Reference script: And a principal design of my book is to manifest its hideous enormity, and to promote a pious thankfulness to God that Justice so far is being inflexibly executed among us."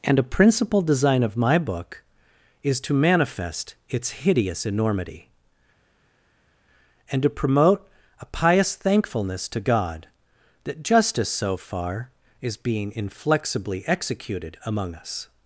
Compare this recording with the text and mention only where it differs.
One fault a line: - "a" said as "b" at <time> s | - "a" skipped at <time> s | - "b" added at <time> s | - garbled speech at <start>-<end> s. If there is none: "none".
none